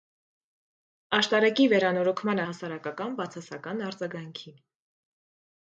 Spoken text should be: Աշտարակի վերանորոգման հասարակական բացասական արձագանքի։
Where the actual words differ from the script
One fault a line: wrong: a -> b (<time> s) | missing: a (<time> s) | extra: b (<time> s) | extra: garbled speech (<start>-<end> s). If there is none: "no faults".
no faults